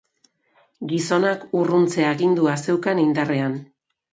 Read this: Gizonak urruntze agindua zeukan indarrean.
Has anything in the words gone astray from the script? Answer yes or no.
no